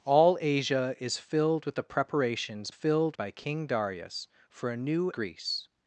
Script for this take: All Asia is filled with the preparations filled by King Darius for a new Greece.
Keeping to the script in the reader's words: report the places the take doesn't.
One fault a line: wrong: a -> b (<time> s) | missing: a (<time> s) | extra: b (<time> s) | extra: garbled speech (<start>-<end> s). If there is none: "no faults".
no faults